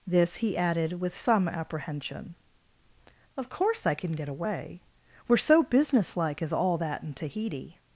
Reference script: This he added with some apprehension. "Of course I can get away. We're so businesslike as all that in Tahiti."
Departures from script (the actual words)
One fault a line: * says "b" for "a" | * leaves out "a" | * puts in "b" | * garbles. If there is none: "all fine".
all fine